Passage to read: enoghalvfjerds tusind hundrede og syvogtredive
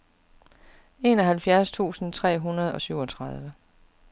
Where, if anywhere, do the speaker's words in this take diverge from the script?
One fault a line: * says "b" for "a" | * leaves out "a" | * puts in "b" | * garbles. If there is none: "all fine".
* puts in "tre"